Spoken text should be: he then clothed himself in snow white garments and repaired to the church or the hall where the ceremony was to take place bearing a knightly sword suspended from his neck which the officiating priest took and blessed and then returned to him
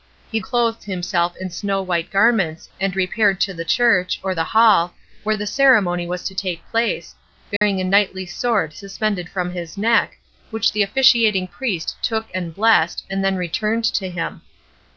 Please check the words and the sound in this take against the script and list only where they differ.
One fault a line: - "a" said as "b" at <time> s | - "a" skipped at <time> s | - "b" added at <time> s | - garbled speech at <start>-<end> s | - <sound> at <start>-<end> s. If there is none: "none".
- "then" skipped at 0.4 s
- dropout at 7.6-7.6 s